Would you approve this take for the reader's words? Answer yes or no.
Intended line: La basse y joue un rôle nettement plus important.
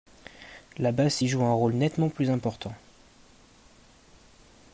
yes